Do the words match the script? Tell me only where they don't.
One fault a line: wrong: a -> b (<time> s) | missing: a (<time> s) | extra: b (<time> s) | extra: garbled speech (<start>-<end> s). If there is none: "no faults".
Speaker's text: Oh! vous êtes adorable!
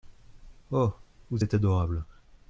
no faults